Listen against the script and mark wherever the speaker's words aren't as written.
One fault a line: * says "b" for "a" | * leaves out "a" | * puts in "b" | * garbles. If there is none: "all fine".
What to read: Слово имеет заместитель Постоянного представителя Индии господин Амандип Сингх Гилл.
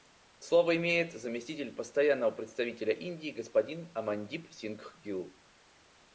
all fine